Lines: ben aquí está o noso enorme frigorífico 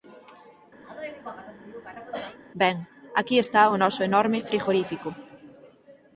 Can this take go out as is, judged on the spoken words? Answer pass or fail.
pass